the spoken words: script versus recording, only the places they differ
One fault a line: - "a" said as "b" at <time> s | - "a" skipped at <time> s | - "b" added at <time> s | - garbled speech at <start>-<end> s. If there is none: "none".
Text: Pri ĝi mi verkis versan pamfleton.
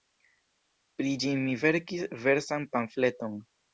none